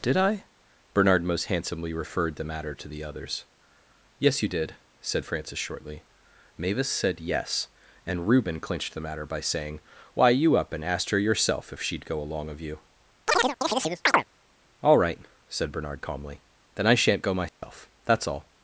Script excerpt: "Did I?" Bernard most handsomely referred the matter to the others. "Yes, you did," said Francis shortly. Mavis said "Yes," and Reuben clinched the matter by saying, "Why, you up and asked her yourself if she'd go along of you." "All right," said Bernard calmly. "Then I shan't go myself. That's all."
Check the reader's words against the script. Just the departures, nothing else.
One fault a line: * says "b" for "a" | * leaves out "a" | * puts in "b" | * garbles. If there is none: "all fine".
all fine